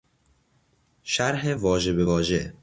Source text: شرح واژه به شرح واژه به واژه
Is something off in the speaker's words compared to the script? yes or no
yes